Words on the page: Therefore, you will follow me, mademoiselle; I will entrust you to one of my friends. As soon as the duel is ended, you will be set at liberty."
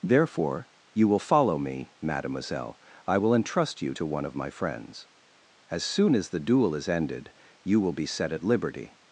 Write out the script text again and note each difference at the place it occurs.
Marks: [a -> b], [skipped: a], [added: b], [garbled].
Therefore, you will follow me, mademoiselle; I will entrust you to one of my friends. As soon as the duel is ended, you will be set at liberty."